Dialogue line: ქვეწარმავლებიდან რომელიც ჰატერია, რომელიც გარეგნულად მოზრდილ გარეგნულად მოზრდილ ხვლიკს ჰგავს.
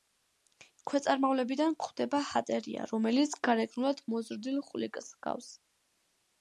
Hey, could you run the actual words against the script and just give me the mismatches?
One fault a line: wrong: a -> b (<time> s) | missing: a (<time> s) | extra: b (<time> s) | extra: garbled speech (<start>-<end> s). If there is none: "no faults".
wrong: რომელიც -> გვხვდება (1.8 s)
missing: გარეგნულად მოზრდილ (4.6 s)